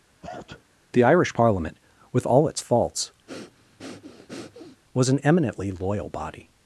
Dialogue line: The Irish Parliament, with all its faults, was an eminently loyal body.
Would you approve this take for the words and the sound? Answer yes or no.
no